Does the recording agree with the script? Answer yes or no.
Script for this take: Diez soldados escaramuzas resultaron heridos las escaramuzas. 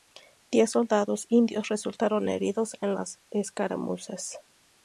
no